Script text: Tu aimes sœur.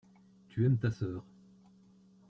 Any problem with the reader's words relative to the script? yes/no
yes